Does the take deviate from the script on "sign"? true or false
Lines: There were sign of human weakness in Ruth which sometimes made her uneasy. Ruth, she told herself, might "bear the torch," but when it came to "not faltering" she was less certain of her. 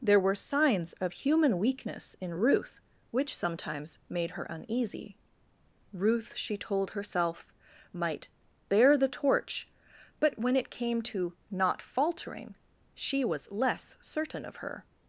true